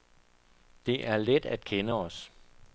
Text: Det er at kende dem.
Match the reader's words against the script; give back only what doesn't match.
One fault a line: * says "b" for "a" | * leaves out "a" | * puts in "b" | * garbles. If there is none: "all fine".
* puts in "let"
* says "os" for "dem"